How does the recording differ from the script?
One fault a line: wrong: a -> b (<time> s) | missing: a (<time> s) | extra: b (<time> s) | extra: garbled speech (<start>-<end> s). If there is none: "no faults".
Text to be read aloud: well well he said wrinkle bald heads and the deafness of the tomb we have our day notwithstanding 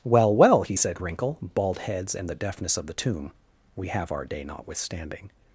no faults